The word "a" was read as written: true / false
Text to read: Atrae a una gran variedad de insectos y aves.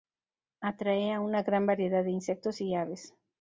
true